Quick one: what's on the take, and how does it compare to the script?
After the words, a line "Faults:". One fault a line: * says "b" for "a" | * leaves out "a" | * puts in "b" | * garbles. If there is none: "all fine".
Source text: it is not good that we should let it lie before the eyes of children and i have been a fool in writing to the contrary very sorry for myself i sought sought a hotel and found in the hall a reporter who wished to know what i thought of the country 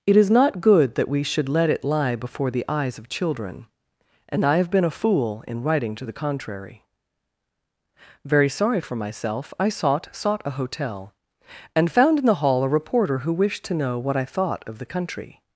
it is not good that we should let it lie before the eyes of children and i have been a fool in writing to the contrary very sorry for myself i sought sought a hotel and found in the hall a reporter who wished to know what i thought of the country
Faults:
all fine